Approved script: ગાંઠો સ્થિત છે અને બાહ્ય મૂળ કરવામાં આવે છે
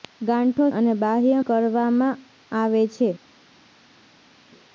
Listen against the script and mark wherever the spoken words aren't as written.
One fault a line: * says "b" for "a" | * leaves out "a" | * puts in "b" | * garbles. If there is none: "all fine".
* leaves out "સ્થિત છે"
* leaves out "મૂળ"